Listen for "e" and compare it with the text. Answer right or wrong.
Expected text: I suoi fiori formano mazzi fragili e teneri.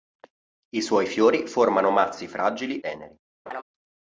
wrong